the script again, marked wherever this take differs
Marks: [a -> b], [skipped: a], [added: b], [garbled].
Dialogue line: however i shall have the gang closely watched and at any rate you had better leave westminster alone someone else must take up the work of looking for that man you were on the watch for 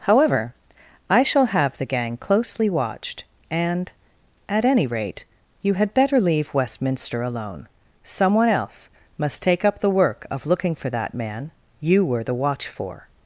however i shall have the gang closely watched and at any rate you had better leave westminster alone someone else must take up the work of looking for that man you were [skipped: on] the watch for